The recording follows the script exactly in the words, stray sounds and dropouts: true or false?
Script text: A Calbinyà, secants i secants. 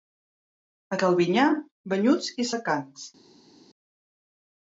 false